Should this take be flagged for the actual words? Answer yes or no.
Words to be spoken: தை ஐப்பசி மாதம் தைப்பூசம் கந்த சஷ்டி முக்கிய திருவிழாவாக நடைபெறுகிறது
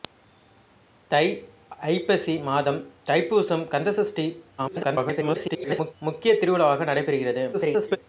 yes